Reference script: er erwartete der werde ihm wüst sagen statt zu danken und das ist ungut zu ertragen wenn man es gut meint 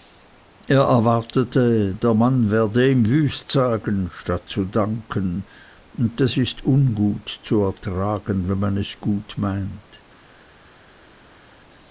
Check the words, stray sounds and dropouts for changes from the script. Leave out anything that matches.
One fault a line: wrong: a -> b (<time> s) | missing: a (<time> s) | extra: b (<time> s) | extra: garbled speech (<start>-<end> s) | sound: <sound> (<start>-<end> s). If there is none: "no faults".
extra: mann (2.1 s)